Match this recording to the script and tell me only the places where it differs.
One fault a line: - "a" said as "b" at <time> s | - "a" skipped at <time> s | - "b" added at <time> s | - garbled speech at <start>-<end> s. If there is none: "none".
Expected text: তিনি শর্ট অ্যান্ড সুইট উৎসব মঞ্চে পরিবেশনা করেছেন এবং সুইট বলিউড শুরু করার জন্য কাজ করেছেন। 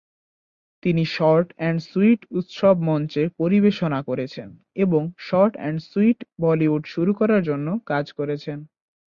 - "শর্ট অ্যান্ড" added at 5.3 s